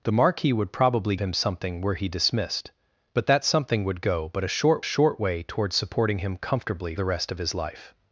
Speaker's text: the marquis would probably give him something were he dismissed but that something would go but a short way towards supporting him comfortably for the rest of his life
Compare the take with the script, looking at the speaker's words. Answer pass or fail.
fail